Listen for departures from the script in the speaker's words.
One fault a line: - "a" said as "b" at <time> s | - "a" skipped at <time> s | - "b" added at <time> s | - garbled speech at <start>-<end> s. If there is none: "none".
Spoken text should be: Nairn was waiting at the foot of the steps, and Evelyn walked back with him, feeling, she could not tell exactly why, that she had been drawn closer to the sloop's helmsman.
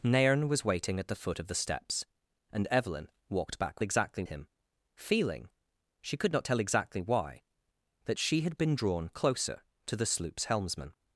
- "with" said as "exactly" at 3.8 s